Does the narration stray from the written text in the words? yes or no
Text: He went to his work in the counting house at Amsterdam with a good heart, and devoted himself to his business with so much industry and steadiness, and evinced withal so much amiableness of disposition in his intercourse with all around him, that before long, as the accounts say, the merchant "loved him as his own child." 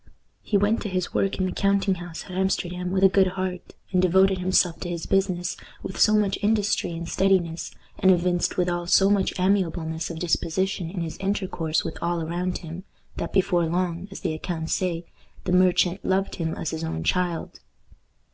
no